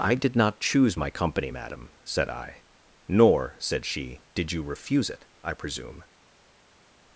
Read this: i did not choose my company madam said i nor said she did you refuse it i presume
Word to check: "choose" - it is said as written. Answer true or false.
true